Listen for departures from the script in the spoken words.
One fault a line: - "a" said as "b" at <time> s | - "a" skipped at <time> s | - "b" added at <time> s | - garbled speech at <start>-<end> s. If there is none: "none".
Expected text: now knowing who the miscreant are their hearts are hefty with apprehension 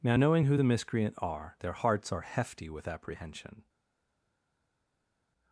none